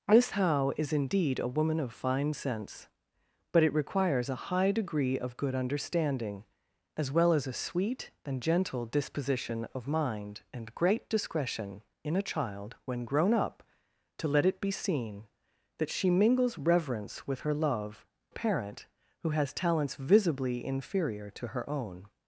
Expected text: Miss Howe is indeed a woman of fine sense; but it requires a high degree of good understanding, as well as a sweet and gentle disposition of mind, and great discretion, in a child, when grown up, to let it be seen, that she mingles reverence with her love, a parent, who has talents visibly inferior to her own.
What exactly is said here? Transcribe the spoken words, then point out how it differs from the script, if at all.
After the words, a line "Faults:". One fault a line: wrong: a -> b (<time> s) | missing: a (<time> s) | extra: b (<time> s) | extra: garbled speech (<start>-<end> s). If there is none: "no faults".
Miss Howe is indeed a woman of fine sense; but it requires a high degree of good understanding, as well as a sweet and gentle disposition of mind, and great discretion, in a child, when grown up, to let it be seen, that she mingles reverence with her love, a parent, who has talents visibly inferior to her own.
Faults:
no faults